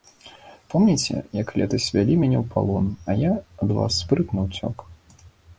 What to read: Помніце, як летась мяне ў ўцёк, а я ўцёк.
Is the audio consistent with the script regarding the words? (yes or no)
no